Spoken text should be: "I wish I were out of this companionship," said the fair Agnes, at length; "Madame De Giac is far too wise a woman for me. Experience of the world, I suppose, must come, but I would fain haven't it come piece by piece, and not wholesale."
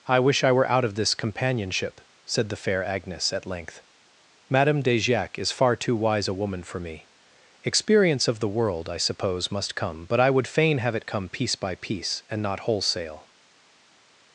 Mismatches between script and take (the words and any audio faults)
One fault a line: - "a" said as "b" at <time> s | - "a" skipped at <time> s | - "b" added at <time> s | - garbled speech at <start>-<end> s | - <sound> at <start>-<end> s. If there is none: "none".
- "haven't" said as "have" at 10.8 s